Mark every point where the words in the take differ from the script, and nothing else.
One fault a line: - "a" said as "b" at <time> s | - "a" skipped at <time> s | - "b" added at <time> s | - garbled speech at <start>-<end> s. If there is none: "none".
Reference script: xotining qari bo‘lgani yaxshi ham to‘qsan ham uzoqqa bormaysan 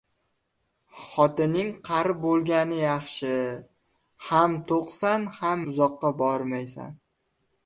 none